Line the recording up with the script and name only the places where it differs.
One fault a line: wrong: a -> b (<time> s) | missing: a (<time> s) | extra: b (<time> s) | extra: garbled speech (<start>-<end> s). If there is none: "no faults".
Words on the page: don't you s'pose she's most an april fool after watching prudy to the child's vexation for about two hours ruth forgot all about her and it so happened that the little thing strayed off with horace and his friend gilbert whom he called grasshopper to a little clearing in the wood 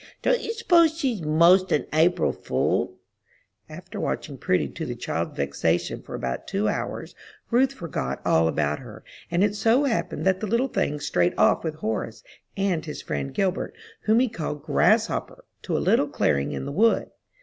no faults